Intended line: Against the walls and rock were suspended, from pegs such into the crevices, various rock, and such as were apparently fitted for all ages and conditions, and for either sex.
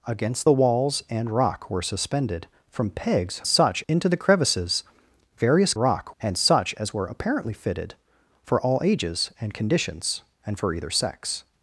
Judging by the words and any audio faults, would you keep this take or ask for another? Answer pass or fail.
pass